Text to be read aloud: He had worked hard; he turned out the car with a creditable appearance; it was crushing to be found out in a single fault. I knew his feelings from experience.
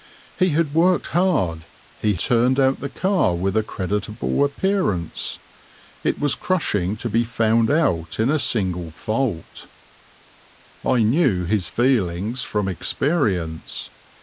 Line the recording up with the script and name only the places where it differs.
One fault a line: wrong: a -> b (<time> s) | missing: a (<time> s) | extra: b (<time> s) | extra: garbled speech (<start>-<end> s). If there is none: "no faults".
no faults